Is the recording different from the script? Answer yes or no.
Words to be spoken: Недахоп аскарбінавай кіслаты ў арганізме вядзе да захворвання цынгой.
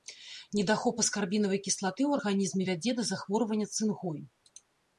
no